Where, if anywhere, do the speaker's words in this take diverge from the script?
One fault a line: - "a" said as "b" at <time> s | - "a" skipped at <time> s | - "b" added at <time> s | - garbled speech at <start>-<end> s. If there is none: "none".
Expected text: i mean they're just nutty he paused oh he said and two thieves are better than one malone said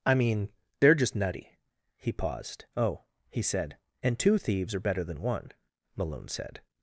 none